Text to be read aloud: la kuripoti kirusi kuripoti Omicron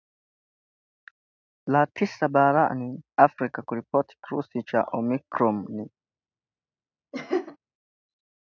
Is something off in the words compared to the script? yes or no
yes